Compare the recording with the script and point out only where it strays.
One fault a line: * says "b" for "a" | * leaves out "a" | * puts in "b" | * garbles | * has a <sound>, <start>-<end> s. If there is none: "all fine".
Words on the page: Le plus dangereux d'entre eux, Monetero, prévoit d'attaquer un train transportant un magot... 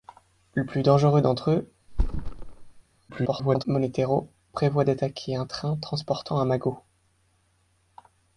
* has a thud, 1.9-2.8 s
* garbles